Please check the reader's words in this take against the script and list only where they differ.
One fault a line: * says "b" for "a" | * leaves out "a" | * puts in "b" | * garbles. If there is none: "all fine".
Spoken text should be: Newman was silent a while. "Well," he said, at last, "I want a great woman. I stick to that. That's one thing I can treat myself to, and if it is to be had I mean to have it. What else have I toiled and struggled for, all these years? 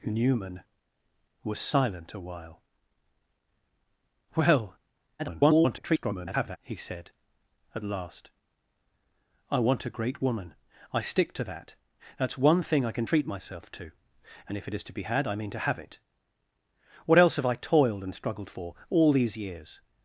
* garbles